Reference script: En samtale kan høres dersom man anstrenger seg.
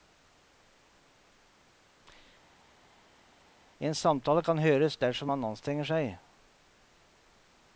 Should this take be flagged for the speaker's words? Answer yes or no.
no